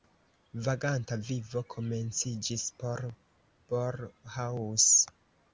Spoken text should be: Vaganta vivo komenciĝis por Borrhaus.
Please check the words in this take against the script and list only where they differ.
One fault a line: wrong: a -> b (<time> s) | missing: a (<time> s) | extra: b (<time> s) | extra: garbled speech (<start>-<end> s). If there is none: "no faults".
no faults